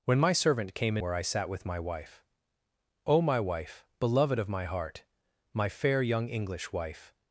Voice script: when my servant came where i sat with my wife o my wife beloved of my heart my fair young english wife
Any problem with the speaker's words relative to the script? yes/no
no